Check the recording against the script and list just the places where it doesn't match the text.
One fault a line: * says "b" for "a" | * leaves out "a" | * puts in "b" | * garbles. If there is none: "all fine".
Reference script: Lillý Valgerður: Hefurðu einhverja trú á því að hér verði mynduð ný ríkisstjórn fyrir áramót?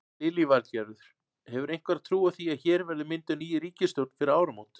all fine